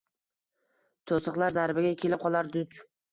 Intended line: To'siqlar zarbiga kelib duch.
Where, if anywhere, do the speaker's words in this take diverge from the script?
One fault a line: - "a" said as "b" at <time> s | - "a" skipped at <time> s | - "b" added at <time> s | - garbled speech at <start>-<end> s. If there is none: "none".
- "qolar" added at 2.2 s